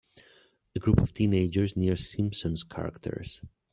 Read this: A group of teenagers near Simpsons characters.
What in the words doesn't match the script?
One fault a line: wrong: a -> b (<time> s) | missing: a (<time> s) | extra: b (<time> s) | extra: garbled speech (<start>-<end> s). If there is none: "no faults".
no faults